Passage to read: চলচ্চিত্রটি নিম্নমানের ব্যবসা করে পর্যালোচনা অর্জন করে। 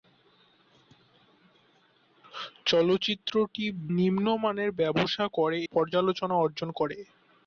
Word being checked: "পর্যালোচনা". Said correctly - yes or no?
yes